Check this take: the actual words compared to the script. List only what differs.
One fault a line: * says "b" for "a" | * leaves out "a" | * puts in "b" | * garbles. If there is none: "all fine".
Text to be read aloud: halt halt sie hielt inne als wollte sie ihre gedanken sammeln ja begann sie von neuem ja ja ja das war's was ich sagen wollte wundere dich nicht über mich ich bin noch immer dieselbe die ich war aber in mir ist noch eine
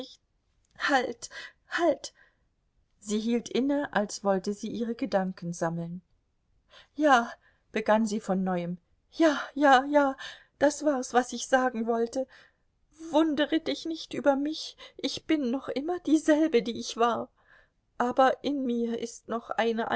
all fine